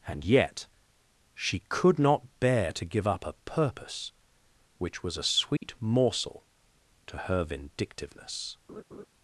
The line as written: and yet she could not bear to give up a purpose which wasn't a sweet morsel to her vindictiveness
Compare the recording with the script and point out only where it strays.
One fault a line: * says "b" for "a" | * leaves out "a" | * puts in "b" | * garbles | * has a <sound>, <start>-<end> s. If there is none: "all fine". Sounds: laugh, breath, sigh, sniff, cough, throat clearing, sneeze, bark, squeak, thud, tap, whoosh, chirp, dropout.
* says "was" for "wasn't"
* has a dropout, 5.6-5.6 s
* has a laugh, 8.7-9.1 s